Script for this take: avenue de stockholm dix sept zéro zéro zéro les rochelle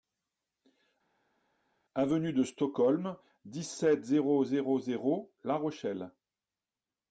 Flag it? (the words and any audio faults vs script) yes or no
yes